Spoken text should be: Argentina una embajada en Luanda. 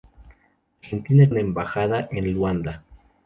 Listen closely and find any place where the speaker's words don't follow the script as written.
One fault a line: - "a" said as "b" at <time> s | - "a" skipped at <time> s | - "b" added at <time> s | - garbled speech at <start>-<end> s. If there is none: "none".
none